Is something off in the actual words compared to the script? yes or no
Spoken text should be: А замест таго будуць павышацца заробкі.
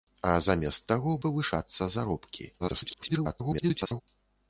yes